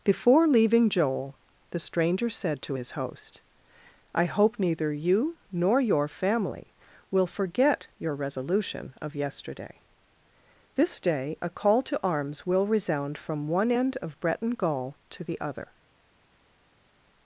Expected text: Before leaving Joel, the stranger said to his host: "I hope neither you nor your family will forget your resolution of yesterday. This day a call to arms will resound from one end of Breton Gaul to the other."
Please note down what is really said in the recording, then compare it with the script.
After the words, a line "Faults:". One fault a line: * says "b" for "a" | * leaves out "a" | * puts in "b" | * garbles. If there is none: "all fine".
Before leaving Joel, the stranger said to his host: "I hope neither you nor your family will forget your resolution of yesterday. This day a call to arms will resound from one end of Breton Gaul to the other."
Faults:
all fine